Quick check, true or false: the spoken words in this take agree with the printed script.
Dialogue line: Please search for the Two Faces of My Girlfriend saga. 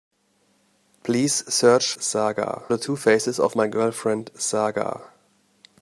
false